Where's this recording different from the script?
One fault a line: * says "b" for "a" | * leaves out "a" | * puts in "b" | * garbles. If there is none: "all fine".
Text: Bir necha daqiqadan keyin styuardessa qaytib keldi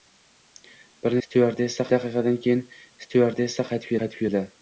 * says "styuardessa" for "necha"
* puts in "qaytib"